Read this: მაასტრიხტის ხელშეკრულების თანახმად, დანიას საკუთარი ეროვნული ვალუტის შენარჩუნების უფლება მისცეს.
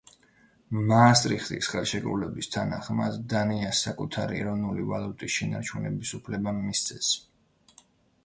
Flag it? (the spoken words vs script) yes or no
no